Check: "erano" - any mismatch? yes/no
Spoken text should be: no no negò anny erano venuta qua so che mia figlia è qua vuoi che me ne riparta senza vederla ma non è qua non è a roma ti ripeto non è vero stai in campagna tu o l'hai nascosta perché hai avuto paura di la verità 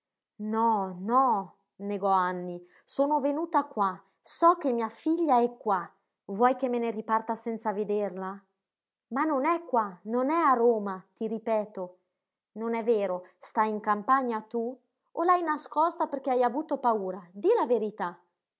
yes